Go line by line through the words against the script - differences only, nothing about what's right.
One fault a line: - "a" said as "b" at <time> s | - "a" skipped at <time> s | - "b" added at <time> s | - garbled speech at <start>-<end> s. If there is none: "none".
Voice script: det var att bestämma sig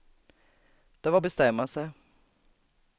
none